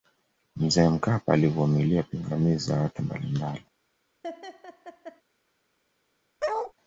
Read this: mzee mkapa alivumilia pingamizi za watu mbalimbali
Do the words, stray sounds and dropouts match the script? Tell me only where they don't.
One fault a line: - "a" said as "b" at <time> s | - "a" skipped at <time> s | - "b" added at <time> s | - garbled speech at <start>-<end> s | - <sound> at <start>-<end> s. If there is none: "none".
- laugh at 4.2-5.2 s
- bark at 6.4-6.7 s